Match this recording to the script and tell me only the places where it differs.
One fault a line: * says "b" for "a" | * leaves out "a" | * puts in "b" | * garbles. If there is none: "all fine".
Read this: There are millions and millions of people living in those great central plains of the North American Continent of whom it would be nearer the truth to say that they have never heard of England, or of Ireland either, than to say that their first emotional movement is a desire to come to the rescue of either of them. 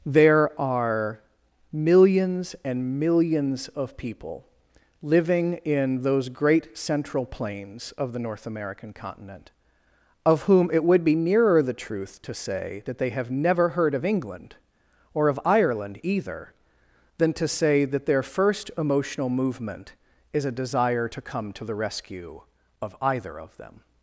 all fine